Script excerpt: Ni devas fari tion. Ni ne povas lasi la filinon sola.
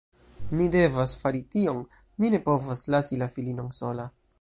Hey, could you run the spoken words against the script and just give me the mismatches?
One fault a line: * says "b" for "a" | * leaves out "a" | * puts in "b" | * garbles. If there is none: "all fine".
all fine